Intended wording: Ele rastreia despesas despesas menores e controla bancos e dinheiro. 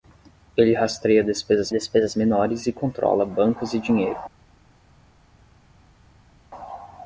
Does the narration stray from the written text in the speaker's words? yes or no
no